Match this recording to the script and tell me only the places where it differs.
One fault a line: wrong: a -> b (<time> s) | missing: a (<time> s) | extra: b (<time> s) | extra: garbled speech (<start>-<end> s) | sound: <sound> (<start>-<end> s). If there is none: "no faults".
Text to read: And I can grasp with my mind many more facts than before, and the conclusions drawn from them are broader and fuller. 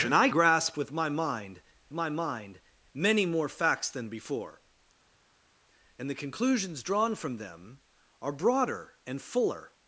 missing: can (0.3 s)
extra: my mind (1.9 s)